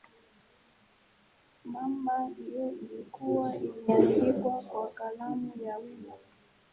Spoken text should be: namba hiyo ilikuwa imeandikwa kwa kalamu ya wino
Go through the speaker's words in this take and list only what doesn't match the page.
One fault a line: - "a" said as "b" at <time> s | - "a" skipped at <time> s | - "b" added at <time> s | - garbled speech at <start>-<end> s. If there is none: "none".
none